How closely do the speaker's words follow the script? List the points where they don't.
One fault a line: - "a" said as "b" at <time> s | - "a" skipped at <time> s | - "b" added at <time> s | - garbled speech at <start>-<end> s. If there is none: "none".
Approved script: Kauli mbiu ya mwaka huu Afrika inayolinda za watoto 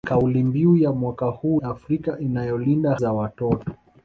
none